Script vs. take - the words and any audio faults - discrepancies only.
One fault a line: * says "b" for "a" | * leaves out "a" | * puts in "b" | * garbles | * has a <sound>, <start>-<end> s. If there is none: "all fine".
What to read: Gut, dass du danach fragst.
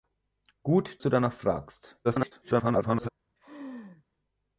* leaves out "dass"
* garbles
* has a laugh, 3.4-4.0 s